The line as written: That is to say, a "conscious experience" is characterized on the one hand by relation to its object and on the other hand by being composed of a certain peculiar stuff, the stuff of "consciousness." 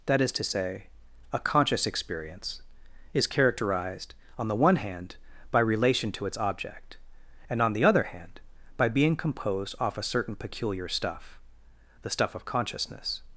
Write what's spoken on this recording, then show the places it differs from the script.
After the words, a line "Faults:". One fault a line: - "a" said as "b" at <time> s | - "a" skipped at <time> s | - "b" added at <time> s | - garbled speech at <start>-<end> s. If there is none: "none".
That is to say, a "conscious experience" is characterized on the one hand by relation to its object and on the other hand by being composed off a certain peculiar stuff, the stuff of "consciousness."
Faults:
- "of" said as "off" at 9.8 s